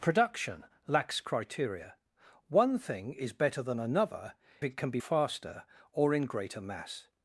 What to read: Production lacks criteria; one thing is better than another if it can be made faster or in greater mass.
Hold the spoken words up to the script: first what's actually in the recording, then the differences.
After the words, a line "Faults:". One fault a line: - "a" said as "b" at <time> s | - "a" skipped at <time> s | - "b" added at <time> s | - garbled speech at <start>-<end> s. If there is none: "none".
Production lacks criteria; one thing is better than another it can be faster or in greater mass.
Faults:
- "if" skipped at 4.3 s
- "made" skipped at 5.0 s